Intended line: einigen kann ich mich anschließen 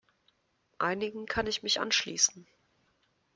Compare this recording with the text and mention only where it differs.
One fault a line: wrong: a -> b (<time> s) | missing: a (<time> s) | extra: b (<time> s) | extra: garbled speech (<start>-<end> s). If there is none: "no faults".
no faults